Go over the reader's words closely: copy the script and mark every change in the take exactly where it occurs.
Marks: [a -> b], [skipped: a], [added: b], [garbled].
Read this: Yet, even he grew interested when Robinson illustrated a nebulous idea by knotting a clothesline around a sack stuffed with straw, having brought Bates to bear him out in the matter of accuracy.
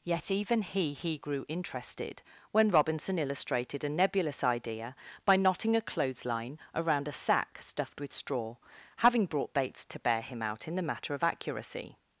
Yet, even he [added: he] grew interested when Robinson illustrated a nebulous idea by knotting a clothesline around a sack stuffed with straw, having brought Bates to bear him out in the matter of accuracy.